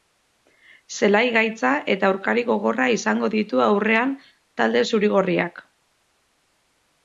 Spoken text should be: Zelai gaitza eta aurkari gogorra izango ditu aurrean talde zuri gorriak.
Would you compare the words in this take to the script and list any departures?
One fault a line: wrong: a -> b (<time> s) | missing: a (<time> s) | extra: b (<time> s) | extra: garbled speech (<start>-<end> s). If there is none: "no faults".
no faults